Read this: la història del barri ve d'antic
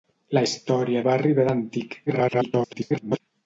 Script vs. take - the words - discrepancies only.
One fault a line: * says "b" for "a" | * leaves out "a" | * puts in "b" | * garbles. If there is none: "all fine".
* leaves out "del"
* garbles